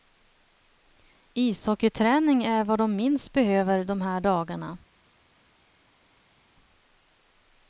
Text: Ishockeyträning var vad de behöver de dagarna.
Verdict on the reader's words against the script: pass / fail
fail